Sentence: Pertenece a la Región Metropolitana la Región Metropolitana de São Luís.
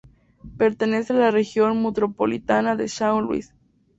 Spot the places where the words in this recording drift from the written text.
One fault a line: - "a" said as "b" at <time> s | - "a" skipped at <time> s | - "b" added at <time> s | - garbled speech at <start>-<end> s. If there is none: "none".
- "la Región Metropolitana" skipped at 2.7 s